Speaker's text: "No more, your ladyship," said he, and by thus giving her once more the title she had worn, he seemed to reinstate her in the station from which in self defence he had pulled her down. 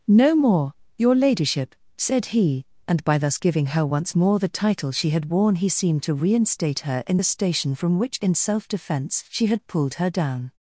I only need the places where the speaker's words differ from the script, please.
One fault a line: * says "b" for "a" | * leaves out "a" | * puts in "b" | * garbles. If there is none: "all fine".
* says "she" for "he"